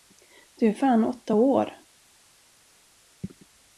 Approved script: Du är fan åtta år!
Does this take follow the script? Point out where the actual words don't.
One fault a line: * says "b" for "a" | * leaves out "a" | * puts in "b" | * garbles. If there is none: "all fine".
all fine